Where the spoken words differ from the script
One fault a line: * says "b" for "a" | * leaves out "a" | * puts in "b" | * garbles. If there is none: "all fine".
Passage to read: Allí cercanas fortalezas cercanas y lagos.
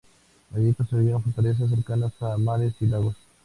* says "construyeron" for "cercanas"
* puts in "a mares"